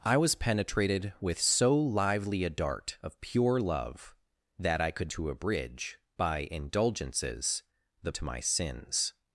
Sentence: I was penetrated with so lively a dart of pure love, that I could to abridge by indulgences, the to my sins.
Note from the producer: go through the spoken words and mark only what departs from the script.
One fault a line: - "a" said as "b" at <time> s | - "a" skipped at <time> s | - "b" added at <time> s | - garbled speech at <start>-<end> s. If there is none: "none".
none